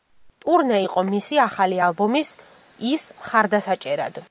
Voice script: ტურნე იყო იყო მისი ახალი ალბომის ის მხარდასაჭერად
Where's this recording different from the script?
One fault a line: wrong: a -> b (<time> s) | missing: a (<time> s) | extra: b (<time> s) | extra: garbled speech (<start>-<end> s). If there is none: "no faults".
missing: იყო (1.0 s)